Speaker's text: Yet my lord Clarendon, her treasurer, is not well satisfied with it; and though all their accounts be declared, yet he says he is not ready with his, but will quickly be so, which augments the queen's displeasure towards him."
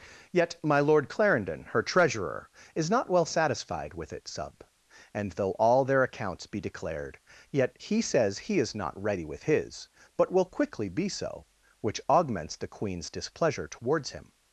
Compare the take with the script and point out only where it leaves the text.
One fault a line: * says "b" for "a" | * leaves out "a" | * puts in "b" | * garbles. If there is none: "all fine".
* puts in "sub"